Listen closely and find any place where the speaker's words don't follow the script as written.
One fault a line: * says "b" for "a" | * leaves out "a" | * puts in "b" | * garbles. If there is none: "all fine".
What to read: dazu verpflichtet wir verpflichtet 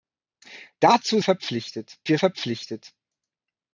all fine